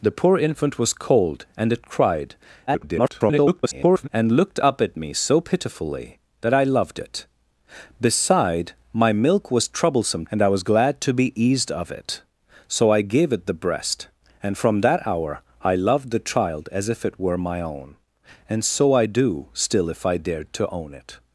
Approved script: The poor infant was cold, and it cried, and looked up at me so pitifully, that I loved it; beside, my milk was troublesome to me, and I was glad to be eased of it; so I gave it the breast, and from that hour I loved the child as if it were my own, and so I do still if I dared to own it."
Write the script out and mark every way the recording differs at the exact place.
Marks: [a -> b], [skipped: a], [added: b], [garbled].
The poor infant was cold, and it cried, [garbled] and looked up at me so pitifully, that I loved it; beside, my milk was troublesome [skipped: to me,] and I was glad to be eased of it; so I gave it the breast, and from that hour I loved the child as if it were my own, and so I do still if I dared to own it."